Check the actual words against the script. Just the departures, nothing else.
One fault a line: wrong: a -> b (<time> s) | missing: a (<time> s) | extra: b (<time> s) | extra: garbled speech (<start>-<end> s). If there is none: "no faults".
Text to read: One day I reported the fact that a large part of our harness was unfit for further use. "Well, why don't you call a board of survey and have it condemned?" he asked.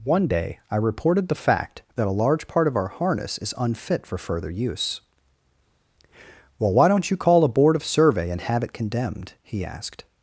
wrong: was -> is (3.4 s)